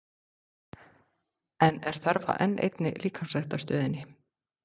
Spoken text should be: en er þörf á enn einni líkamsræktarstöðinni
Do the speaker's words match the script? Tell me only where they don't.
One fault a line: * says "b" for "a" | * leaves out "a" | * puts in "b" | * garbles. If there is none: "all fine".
all fine